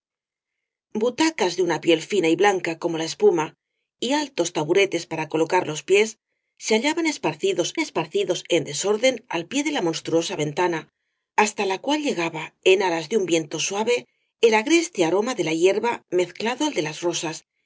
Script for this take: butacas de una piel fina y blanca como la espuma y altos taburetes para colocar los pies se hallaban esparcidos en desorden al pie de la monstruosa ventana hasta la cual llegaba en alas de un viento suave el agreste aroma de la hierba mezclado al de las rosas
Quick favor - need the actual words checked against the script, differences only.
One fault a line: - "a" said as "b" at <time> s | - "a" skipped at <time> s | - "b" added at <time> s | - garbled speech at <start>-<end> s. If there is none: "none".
- "esparcidos" added at 7.8 s